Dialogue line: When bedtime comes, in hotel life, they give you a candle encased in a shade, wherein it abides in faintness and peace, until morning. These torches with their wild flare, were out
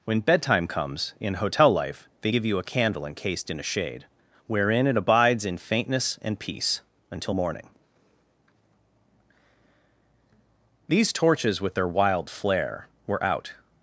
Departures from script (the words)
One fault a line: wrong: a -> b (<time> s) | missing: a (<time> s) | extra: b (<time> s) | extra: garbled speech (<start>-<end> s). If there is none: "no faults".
no faults